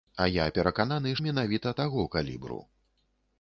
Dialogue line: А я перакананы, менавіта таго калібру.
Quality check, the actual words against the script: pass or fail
pass